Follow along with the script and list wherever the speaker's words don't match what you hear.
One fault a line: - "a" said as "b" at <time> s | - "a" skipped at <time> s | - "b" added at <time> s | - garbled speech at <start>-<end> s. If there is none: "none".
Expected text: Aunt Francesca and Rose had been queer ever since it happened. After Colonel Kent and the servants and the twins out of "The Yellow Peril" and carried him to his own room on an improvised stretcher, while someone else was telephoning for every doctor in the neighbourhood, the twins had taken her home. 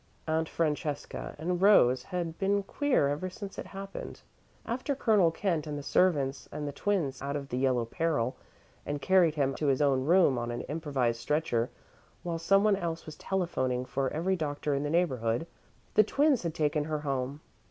none